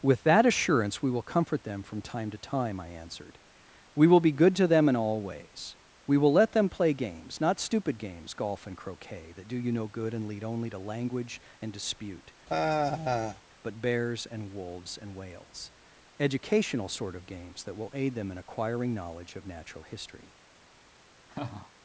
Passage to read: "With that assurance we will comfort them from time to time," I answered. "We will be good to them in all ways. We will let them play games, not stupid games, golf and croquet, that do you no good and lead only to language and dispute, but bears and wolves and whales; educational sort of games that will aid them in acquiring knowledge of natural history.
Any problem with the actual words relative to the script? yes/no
no